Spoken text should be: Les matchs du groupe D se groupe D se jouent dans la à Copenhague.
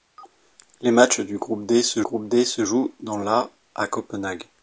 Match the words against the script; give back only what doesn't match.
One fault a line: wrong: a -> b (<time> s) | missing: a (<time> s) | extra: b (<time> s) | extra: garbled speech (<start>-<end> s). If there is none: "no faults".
no faults